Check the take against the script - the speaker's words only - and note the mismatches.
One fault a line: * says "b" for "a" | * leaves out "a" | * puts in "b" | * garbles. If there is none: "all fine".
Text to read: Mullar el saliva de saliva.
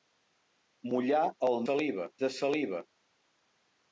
all fine